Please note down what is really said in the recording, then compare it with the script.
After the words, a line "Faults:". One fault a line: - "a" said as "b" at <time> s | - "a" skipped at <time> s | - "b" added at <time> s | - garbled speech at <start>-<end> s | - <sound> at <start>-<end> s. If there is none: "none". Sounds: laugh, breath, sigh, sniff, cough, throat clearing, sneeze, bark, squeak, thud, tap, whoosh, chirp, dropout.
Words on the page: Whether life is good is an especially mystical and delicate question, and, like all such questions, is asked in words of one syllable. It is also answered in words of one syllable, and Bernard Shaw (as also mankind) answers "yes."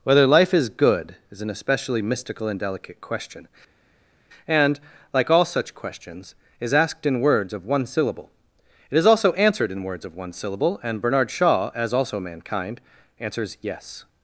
Whether life is good is an especially mystical and delicate question, and, like all such questions, is asked in words of one syllable. It is also answered in words of one syllable, and Bernard Shaw (as also mankind) answers "yes."
Faults:
none